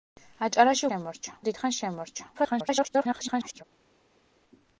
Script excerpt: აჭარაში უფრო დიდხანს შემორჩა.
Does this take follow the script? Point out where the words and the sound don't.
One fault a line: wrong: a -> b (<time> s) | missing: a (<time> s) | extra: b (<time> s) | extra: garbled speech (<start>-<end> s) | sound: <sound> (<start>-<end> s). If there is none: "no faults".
wrong: უფრო -> შემორჩა (0.9 s)
extra: garbled speech (2.3-3.6 s)